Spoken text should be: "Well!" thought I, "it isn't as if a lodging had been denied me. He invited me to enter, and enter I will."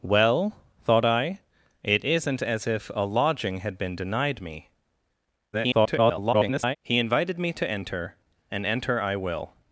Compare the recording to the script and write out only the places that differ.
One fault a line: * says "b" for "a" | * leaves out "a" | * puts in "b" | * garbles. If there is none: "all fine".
* garbles